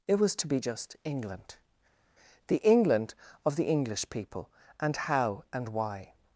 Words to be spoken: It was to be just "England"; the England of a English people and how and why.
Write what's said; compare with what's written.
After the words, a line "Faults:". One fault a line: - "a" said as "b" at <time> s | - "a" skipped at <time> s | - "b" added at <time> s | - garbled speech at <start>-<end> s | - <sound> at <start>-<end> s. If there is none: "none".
It was to be just "England"; the England of the English people and how and why.
Faults:
- "a" said as "the" at 3.5 s